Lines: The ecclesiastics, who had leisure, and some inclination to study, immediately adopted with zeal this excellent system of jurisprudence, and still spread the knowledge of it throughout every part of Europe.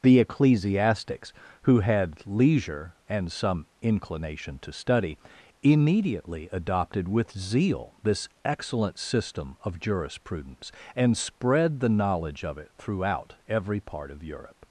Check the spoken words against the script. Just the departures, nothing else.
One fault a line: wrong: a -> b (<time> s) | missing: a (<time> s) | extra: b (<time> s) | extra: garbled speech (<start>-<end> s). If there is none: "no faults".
missing: still (11.2 s)